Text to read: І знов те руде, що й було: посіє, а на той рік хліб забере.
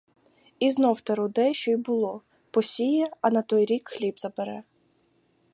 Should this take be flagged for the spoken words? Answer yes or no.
no